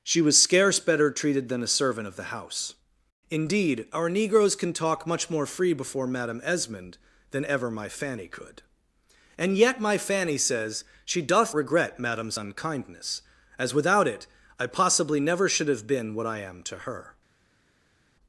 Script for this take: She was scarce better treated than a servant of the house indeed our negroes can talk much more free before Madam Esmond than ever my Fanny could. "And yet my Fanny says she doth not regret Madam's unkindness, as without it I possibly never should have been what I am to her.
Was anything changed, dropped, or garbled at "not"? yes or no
yes